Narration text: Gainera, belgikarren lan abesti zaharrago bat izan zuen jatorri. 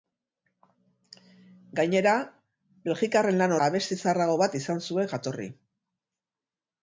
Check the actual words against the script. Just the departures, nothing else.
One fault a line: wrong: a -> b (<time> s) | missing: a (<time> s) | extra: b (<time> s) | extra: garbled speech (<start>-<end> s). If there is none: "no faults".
no faults